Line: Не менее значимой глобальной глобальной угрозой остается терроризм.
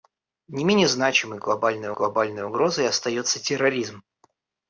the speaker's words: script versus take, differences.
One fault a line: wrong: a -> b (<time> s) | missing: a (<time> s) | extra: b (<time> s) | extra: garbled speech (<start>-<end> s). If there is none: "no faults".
no faults